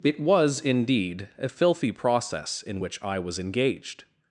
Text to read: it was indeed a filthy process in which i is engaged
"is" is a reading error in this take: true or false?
true